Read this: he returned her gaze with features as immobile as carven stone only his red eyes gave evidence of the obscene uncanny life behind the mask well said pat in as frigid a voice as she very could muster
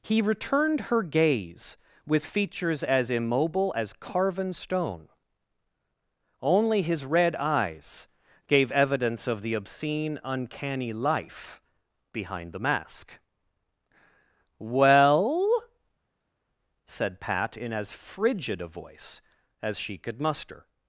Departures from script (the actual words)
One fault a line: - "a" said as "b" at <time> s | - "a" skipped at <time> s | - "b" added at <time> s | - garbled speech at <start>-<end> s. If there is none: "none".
- "very" skipped at 20.0 s